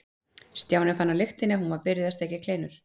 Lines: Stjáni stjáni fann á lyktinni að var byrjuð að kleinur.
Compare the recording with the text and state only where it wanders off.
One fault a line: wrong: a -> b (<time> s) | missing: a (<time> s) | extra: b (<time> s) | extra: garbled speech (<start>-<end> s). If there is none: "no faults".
missing: stjáni (0.9 s)
extra: hún (1.6 s)
extra: steikja (2.2 s)